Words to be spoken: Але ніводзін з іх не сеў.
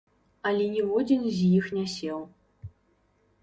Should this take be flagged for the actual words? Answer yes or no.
no